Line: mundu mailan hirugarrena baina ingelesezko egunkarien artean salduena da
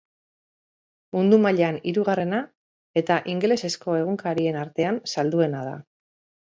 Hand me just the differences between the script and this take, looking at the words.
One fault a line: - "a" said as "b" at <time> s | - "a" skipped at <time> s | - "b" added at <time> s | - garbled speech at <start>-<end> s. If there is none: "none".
- "baina" said as "eta" at 3.0 s